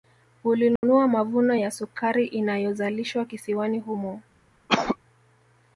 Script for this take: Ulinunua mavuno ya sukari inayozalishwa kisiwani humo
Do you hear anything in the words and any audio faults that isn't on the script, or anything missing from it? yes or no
yes